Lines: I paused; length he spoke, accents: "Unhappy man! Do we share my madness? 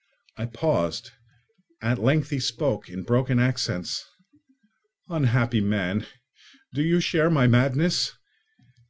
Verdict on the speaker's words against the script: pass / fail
fail